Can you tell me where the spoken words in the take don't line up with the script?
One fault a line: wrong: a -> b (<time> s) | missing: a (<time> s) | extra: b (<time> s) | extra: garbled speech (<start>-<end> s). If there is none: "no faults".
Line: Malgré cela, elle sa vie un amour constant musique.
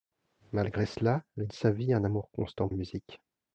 no faults